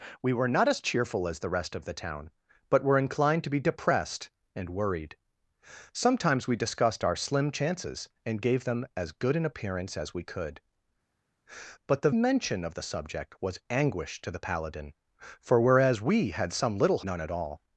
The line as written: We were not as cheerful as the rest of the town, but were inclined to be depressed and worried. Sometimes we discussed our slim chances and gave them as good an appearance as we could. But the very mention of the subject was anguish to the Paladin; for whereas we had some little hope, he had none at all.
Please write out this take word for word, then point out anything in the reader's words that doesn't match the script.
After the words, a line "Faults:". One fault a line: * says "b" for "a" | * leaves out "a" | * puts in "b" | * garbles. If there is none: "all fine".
We were not as cheerful as the rest of the town, but were inclined to be depressed and worried. Sometimes we discussed our slim chances and gave them as good an appearance as we could. But the mention of the subject was anguish to the Paladin; for whereas we had some little none at all.
Faults:
* leaves out "very"
* leaves out "hope he had"